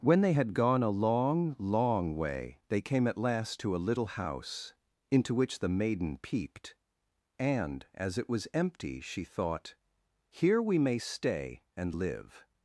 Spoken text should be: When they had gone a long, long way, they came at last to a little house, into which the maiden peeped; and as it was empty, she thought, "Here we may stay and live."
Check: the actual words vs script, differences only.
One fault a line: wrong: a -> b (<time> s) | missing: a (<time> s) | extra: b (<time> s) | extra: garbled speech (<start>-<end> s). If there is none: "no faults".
no faults